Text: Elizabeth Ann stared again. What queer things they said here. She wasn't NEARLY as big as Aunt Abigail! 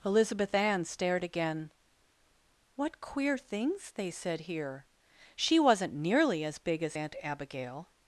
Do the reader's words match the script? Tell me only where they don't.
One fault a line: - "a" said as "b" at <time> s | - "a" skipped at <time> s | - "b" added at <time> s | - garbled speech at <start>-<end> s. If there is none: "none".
none